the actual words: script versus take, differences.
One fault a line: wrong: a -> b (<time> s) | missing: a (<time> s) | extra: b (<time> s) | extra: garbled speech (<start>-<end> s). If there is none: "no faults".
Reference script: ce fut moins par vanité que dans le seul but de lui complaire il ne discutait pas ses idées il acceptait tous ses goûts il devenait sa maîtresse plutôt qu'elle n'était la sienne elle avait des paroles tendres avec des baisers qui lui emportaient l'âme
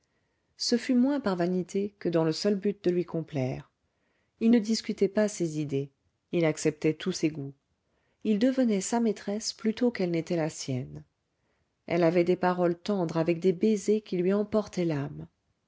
no faults